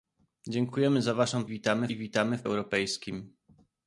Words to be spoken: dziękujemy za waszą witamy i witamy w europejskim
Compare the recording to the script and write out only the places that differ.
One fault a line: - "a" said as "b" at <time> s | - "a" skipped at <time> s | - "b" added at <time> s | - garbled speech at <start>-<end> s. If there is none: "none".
none